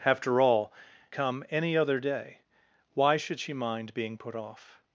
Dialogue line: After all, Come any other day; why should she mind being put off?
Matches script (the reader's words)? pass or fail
pass